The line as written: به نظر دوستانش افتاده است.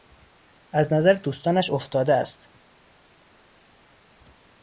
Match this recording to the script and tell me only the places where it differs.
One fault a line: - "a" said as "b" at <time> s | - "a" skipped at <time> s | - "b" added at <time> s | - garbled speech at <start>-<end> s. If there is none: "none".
- "به" said as "از" at 0.7 s